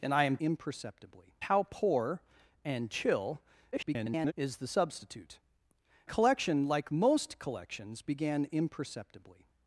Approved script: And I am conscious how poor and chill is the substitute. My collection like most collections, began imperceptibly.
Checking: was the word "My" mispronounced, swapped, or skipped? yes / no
yes